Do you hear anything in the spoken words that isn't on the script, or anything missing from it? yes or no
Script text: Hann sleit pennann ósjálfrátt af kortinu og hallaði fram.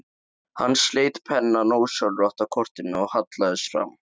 no